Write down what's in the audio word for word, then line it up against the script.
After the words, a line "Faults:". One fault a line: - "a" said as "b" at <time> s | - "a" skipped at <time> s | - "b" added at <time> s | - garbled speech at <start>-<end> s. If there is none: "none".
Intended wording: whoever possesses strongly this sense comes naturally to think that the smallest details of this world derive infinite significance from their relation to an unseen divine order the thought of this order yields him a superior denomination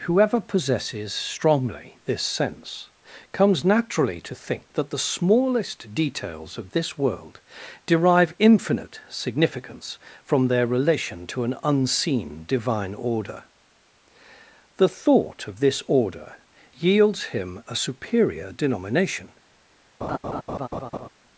whoever possesses strongly this sense comes naturally to think that the smallest details of this world derive infinite significance from their relation to an unseen divine order the thought of this order yields him a superior denomination
Faults:
none